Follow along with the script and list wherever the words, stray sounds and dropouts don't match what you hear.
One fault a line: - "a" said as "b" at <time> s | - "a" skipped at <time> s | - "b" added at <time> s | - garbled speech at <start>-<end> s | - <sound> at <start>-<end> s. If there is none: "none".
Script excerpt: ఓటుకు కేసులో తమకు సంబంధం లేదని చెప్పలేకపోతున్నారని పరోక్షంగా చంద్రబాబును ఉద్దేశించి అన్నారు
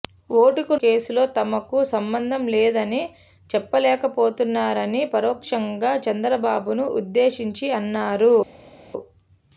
none